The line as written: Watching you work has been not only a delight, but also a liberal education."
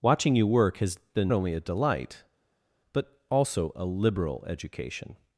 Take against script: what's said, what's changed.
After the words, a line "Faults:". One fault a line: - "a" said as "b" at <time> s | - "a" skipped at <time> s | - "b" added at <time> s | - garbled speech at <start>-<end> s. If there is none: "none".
Watching you work has been only a delight, but also a liberal education."
Faults:
- "not" skipped at 1.3 s